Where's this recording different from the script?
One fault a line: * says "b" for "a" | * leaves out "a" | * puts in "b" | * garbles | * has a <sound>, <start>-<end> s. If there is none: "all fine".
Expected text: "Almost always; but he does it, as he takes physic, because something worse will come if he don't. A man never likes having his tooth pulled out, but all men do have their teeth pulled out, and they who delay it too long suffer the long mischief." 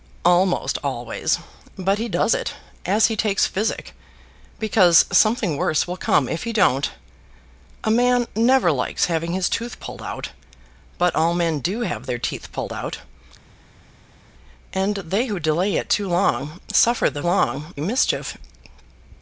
all fine